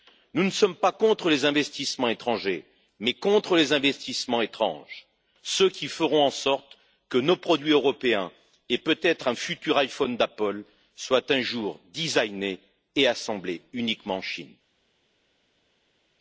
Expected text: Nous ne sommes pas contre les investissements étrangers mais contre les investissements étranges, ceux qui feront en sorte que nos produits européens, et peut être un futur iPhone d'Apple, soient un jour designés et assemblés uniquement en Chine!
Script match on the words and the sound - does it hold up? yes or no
yes